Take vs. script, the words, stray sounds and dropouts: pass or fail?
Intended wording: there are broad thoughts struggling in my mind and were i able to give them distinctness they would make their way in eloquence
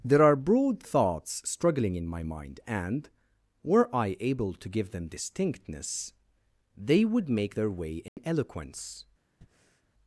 fail